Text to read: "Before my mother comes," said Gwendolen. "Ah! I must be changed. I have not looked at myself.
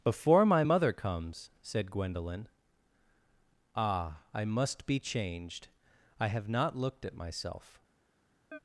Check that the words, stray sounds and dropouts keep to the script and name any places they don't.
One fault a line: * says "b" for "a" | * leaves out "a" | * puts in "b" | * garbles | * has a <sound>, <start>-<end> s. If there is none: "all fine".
* has a chirp, 8.5-8.6 s